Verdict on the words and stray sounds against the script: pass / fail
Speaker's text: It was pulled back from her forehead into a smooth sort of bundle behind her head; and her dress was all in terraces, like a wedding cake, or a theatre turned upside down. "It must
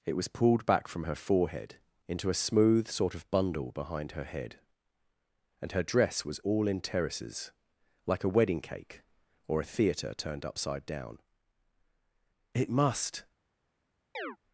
fail